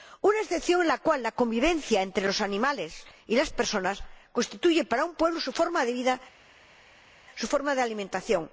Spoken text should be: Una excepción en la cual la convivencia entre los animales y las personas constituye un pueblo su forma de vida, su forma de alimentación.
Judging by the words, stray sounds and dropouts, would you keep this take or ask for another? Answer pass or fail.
fail